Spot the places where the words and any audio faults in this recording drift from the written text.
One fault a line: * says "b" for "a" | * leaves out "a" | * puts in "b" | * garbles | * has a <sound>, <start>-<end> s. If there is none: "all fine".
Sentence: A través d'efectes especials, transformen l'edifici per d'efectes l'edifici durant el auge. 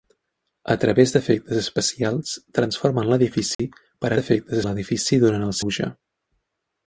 * has a dropout, 3.5-3.6 s